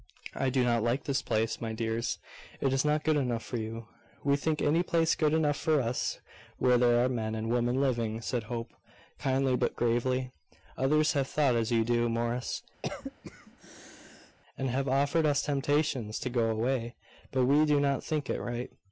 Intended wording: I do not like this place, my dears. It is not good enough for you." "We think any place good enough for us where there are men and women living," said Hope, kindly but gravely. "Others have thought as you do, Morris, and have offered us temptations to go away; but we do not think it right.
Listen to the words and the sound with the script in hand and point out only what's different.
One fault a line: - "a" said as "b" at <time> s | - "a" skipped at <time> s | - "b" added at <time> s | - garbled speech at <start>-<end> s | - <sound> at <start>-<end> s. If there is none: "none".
- cough at 12.8-14.4 s